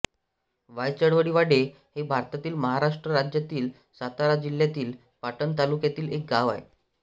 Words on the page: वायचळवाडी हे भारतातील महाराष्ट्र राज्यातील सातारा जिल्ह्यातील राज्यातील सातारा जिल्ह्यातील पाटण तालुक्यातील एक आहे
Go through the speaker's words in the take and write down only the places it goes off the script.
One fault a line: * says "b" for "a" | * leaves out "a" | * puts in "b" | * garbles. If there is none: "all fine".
* leaves out "राज्यातील सातारा जिल्ह्यातील"
* puts in "गाव"